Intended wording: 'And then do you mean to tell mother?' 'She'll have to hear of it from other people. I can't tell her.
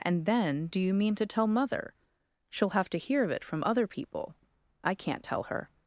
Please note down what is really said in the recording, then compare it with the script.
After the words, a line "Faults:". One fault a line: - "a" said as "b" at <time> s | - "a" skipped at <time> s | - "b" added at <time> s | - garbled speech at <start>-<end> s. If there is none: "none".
'And then do you mean to tell mother?' 'She'll have to hear of it from other people. I can't tell her.
Faults:
none